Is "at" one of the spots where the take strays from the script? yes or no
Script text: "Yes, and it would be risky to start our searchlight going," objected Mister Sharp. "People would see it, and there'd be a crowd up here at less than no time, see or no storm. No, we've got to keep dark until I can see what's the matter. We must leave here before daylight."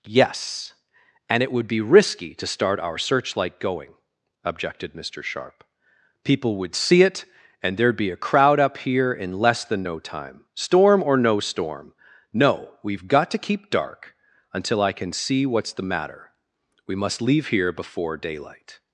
yes